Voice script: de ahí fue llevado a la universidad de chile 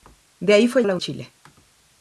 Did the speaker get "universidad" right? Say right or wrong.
wrong